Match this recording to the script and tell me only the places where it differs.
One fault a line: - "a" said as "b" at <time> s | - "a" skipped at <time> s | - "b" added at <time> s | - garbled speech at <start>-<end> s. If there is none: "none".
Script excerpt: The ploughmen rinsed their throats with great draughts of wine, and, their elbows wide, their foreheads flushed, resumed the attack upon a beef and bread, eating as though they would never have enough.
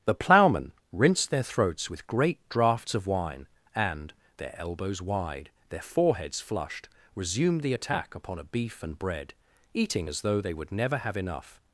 none